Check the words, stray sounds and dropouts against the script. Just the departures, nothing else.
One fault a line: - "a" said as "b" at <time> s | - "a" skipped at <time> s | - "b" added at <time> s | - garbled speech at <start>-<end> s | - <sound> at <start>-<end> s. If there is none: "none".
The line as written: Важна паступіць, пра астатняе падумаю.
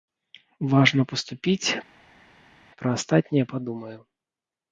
none